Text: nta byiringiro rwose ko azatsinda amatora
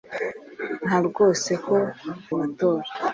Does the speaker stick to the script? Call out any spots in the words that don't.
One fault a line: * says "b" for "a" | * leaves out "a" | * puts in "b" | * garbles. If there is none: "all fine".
* leaves out "byiringiro"
* leaves out "azatsinda"